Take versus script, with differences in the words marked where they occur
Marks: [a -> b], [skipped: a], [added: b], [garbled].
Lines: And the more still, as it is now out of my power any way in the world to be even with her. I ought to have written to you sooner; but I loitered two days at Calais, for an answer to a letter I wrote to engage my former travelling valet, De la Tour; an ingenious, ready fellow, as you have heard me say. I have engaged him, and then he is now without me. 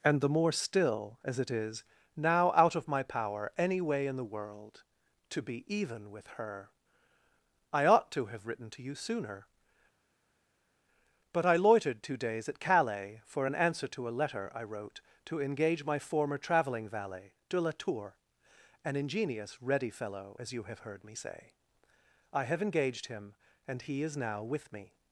And the more still, as it is now out of my power any way in the world to be even with her. I ought to have written to you sooner; but I loitered two days at Calais, for an answer to a letter I wrote to engage my former travelling valet, De la Tour; an ingenious, ready fellow, as you have heard me say. I have engaged him, and [skipped: then] he is now [without -> with] me.